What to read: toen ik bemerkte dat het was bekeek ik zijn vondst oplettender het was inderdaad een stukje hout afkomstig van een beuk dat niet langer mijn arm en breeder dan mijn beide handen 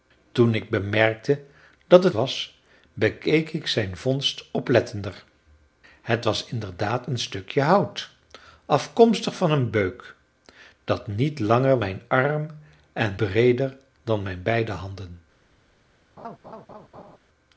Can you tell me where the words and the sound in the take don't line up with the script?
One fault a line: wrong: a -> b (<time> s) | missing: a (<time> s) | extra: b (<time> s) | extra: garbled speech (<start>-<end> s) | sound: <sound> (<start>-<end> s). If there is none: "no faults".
sound: laugh (16.2-17.2 s)